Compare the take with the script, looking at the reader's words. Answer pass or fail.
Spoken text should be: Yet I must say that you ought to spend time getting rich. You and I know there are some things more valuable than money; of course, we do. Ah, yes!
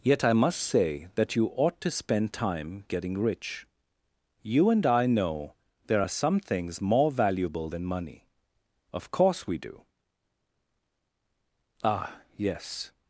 pass